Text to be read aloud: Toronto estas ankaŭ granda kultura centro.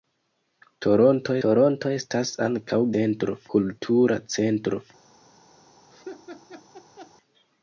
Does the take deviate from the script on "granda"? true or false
true